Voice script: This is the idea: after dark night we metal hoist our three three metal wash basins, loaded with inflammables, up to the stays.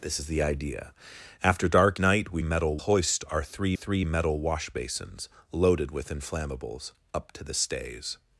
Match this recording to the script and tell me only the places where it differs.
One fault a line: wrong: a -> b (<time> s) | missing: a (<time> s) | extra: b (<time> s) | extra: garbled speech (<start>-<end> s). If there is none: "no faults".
no faults